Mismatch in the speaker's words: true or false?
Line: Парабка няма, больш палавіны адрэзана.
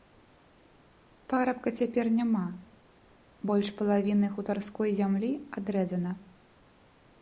true